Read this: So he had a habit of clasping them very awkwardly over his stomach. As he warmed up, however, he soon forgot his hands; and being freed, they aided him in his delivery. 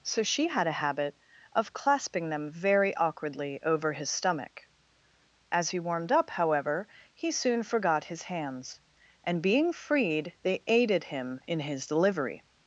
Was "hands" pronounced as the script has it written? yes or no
yes